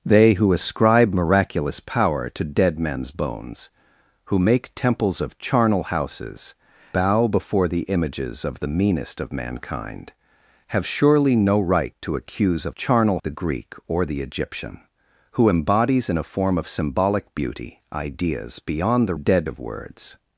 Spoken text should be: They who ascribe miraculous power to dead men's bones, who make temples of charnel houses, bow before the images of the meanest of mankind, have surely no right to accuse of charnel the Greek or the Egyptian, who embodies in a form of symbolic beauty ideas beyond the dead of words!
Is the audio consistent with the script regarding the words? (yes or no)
yes